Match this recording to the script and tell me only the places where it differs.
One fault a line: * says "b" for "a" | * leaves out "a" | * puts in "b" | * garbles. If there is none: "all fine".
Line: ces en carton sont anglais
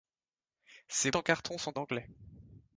all fine